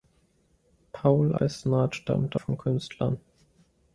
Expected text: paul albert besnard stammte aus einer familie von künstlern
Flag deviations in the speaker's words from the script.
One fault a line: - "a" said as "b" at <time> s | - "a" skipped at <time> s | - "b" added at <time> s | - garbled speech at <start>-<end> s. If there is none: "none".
- "albert" skipped at 1.4 s
- "aus einer familie" skipped at 2.4 s